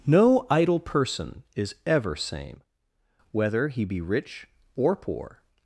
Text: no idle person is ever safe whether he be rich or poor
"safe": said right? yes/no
no